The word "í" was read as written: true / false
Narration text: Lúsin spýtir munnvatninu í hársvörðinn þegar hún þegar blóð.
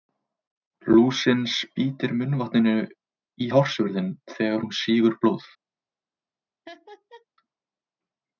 true